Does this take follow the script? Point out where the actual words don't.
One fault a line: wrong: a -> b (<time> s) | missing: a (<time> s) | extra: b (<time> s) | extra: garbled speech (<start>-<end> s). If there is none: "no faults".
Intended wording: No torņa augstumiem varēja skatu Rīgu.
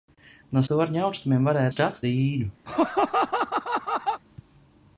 no faults